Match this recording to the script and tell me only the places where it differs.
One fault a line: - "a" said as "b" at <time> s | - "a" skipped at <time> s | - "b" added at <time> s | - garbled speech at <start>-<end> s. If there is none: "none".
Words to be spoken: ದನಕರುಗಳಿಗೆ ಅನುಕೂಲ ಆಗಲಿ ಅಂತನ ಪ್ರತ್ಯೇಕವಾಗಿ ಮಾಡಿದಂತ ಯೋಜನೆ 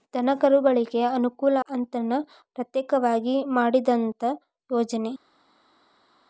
- "ಆಗಲಿ" skipped at 1.6 s